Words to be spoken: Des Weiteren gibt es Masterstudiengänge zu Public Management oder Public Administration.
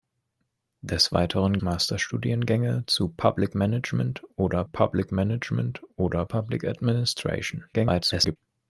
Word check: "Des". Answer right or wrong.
right